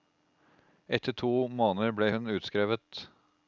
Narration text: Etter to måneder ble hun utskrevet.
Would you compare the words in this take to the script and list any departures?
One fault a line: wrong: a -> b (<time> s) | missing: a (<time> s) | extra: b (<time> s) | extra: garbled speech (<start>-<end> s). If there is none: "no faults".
no faults